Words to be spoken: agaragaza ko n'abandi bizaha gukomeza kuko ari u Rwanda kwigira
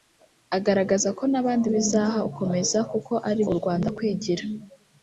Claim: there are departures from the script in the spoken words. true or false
false